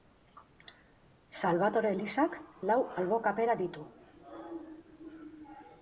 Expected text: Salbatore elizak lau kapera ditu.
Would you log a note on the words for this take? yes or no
yes